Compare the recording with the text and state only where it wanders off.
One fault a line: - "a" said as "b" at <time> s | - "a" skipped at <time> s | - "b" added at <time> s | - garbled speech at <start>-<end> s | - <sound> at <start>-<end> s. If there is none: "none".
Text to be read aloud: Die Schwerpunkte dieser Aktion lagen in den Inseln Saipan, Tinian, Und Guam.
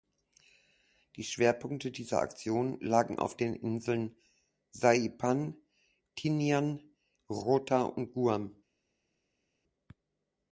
- "in" said as "auf" at 3.2 s
- "Rota" added at 7.3 s